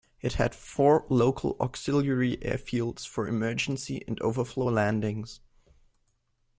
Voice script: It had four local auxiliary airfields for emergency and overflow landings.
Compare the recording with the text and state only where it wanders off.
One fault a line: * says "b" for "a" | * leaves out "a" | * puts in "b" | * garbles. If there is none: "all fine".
all fine